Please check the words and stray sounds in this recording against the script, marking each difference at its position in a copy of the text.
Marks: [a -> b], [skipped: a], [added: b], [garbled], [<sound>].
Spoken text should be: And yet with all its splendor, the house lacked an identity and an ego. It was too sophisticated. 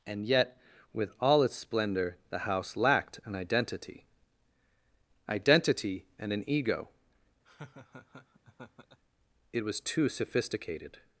And yet with all its splendor, the house lacked an identity [added: identity] and an ego. [laugh] It was too sophisticated.